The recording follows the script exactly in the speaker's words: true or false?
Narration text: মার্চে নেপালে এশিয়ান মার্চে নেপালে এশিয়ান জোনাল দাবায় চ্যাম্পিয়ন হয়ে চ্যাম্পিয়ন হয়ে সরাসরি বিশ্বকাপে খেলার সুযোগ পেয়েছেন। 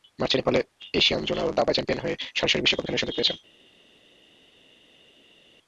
false